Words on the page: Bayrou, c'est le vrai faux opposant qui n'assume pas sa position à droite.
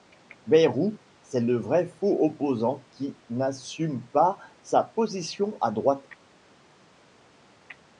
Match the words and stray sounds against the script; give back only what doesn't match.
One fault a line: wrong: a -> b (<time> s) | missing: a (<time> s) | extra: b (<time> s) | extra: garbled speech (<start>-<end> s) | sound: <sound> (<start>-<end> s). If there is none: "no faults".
no faults